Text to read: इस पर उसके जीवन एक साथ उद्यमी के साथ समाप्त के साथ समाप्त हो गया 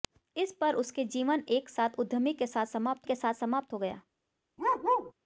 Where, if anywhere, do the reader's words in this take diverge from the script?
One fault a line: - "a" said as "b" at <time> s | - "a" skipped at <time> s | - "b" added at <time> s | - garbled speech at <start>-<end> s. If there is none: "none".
none